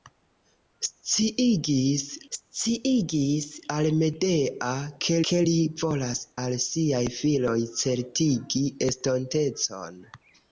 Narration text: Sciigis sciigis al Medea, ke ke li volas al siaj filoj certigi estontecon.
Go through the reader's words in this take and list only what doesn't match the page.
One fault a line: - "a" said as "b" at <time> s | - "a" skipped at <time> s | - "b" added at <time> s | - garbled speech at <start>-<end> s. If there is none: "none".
none